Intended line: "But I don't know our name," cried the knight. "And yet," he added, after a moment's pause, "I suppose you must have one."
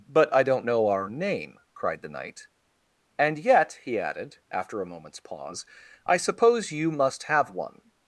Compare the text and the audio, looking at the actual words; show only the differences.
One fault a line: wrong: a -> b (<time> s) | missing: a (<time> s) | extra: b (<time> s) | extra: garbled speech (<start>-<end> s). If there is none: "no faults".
no faults